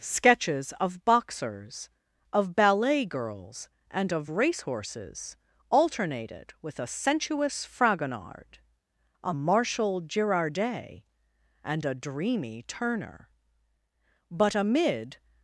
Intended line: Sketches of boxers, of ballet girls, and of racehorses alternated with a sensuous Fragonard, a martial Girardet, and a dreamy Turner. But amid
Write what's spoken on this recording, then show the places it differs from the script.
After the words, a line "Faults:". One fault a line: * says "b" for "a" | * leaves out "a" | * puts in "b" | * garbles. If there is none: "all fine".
Sketches of boxers, of ballet girls, and of racehorses alternated with a sensuous Fragonard, a martial Girardet, and a dreamy Turner. But amid
Faults:
all fine